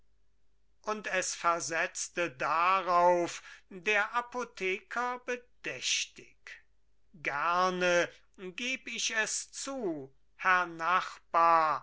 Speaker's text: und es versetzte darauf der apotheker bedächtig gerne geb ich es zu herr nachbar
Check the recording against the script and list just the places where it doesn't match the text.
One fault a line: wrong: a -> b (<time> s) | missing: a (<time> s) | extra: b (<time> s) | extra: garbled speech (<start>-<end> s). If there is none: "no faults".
no faults